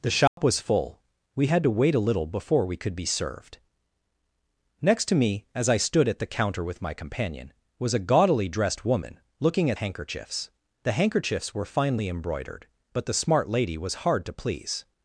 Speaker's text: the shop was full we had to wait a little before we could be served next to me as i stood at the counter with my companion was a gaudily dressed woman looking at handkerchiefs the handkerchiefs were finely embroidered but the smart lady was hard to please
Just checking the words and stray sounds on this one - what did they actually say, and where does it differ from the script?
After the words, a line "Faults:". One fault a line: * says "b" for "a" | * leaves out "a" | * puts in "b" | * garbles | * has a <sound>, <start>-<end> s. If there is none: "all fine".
the shop was full we had to wait a little before we could be served next to me as i stood at the counter with my companion was a gaudily dressed woman looking at handkerchiefs the handkerchiefs were finely embroidered but the smart lady was hard to please
Faults:
* has a dropout, 0.3-0.4 s